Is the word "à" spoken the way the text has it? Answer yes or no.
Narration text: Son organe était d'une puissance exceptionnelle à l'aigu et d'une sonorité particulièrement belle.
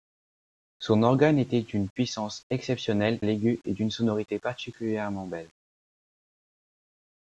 no